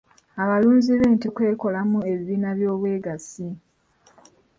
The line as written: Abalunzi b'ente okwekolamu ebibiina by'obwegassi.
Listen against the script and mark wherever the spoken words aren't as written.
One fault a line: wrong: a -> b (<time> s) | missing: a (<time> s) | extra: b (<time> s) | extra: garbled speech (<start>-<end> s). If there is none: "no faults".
no faults